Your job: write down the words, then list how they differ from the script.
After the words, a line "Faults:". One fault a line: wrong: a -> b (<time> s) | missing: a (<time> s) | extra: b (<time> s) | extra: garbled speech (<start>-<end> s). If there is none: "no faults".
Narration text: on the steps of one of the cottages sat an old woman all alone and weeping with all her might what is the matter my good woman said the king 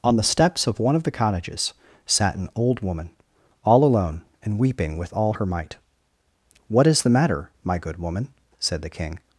on the steps of one of the cottages sat an old woman all alone and weeping with all her might what is the matter my good woman said the king
Faults:
no faults